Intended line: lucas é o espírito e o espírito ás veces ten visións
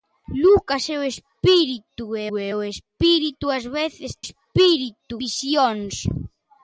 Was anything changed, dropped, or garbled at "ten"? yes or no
yes